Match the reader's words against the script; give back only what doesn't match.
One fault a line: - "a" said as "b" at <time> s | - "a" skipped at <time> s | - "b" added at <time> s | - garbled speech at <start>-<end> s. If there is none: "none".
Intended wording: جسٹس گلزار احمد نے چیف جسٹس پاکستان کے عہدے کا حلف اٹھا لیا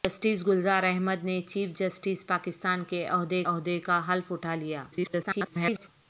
- "عہدے" added at 3.4 s
- garbled speech at 4.9-5.9 s